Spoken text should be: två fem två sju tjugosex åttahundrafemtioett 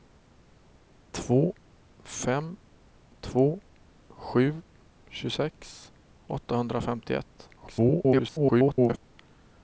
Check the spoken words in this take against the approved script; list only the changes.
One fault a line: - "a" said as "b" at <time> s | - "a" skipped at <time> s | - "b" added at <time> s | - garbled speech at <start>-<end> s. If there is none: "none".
- garbled speech at 7.6-9.0 s